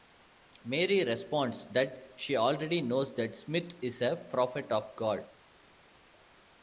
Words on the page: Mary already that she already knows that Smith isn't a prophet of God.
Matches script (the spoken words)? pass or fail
fail